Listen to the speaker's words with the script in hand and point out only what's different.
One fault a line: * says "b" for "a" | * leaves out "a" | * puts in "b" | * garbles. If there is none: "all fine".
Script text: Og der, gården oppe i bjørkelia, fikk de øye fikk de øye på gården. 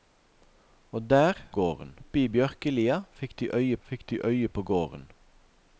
all fine